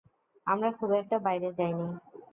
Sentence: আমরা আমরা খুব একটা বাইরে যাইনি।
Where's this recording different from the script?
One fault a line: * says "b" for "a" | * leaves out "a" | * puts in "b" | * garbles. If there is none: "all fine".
* leaves out "আমরা"